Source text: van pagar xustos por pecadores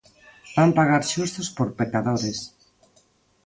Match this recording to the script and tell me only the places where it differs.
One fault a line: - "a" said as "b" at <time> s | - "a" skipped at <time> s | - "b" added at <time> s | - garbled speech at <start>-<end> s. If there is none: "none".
none